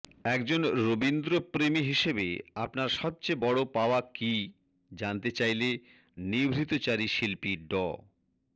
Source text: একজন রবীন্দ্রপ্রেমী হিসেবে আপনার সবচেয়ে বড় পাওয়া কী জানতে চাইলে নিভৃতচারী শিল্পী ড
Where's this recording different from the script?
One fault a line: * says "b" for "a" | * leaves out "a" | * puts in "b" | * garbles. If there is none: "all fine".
all fine